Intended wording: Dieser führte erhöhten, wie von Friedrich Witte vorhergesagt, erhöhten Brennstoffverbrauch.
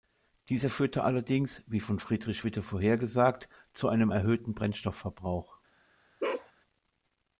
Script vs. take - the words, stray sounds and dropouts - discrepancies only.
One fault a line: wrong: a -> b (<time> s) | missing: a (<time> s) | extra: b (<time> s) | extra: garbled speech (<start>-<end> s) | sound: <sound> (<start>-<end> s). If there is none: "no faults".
wrong: erhöhten -> allerdings (1.0 s)
extra: zu einem (3.7 s)
sound: bark (6.2-6.5 s)